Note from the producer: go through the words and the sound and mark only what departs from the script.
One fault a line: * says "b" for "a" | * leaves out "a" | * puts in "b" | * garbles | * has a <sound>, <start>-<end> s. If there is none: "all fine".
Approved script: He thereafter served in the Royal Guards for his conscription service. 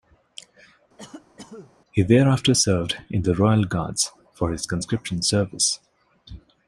* has a cough, 1.0-1.7 s